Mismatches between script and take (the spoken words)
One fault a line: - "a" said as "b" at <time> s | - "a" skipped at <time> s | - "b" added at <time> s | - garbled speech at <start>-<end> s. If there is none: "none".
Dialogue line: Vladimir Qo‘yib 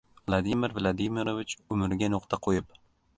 - "Vladimirovich umriga nuqta" added at 0.8 s